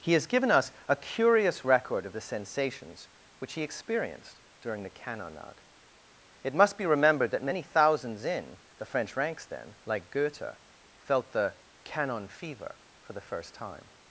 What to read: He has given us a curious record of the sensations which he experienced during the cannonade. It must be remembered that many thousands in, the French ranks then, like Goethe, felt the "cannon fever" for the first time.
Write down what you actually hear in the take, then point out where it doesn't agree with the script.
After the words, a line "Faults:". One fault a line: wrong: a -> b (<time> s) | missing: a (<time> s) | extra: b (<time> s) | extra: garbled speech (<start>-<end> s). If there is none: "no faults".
He has given us a curious record of the sensations which he experienced during the cannonade. It must be remembered that many thousands in, the French ranks then, like Goethe, felt the "cannon fever" for the first time.
Faults:
no faults